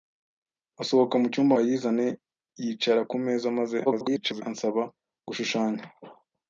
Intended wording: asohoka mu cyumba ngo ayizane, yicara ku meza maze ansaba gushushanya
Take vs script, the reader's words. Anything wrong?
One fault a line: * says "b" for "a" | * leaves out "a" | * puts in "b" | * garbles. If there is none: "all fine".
* leaves out "ngo"
* garbles